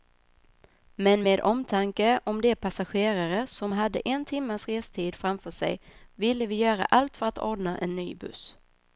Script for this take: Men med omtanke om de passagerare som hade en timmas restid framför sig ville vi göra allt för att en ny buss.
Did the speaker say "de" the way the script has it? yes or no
yes